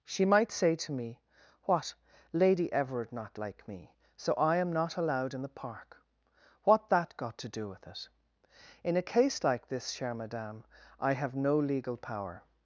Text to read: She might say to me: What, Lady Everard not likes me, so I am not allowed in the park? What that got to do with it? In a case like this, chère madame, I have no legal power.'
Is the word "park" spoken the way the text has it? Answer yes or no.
yes